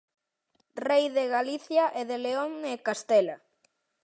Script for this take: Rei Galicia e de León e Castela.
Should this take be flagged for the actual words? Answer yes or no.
yes